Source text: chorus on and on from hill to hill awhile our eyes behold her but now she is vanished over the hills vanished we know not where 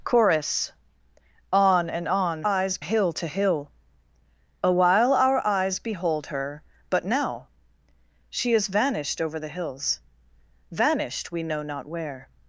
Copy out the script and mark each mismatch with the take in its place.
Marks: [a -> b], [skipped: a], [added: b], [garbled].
chorus on and on [from -> eyes] hill to hill awhile our eyes behold her but now she is vanished over the hills vanished we know not where